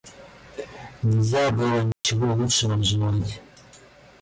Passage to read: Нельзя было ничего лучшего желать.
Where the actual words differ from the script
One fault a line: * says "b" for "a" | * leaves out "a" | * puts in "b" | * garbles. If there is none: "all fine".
all fine